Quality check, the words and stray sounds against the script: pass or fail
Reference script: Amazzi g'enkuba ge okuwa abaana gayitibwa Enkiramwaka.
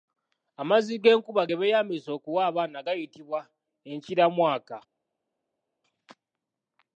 fail